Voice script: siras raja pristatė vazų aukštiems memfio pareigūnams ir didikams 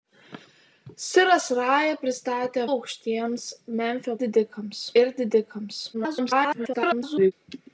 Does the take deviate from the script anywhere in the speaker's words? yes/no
yes